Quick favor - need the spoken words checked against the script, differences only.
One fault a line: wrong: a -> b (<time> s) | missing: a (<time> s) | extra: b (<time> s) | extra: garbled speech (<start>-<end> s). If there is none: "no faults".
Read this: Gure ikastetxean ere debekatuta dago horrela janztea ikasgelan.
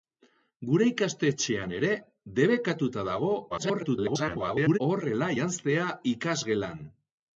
extra: garbled speech (3.5-4.8 s)